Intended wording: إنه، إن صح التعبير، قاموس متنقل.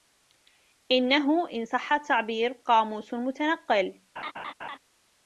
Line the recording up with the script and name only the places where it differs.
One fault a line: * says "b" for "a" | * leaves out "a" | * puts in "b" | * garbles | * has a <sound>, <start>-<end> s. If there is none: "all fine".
* has a laugh, 4.2-4.8 s